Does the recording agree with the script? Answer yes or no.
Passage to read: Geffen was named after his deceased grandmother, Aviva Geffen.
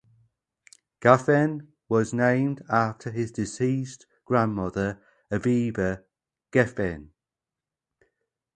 yes